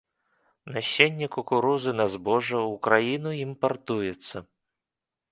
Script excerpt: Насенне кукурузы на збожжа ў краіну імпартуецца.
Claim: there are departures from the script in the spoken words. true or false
false